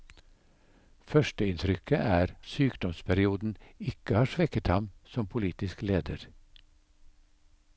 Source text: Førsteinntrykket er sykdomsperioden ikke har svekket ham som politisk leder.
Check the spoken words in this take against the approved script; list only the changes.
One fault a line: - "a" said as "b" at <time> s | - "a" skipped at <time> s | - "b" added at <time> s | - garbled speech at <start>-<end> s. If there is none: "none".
none